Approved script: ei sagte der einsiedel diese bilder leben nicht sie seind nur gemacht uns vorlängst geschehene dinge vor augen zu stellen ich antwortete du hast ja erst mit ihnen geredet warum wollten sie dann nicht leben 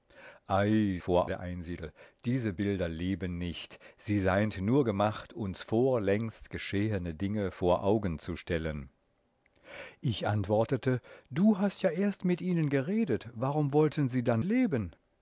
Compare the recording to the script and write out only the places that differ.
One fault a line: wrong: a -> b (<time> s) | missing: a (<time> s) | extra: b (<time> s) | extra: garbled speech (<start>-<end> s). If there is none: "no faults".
wrong: sagte -> vor (1.0 s)
missing: nicht (14.4 s)